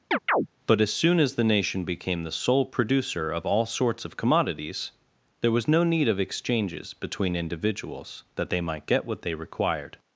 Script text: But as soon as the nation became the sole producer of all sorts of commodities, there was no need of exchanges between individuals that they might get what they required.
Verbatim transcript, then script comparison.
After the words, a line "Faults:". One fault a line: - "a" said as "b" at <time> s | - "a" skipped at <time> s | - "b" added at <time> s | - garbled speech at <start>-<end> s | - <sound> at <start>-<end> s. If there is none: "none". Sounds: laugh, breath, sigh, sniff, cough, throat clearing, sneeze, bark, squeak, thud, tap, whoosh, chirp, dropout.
But as soon as the nation became the sole producer of all sorts of commodities, there was no need of exchanges between individuals that they might get what they required.
Faults:
- chirp at 0.1-0.5 s